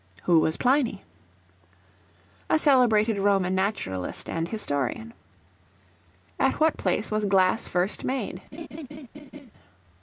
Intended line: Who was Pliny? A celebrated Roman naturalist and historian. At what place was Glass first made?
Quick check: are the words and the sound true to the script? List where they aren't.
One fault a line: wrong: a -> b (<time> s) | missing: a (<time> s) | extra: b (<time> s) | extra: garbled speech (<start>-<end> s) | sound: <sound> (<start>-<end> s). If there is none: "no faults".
sound: laugh (8.5-9.5 s)